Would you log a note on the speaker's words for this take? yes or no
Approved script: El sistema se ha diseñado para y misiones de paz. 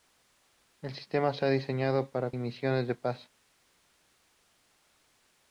no